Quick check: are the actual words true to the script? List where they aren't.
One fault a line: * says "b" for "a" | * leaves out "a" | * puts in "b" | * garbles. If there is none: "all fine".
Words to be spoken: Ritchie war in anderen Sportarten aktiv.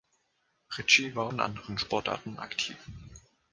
all fine